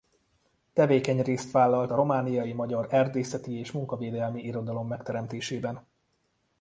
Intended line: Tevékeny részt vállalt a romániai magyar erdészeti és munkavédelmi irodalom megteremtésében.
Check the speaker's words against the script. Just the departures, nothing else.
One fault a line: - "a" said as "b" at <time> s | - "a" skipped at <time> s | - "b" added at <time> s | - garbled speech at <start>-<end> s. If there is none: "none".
none